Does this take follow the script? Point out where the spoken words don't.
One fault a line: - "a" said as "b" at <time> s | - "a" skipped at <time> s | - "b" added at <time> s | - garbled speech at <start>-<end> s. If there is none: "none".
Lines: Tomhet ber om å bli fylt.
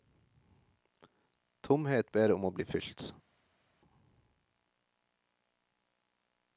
none